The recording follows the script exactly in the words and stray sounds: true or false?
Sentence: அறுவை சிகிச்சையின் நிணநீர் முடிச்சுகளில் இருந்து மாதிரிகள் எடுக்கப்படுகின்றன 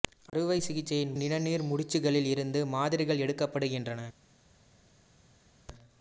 true